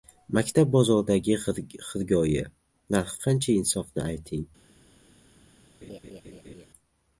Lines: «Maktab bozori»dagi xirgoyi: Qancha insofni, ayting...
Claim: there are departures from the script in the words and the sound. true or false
true